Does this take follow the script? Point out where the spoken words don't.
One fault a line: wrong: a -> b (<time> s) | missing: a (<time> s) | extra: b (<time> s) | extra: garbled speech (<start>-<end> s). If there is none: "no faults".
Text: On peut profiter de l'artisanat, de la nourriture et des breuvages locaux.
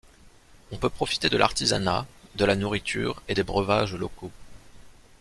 no faults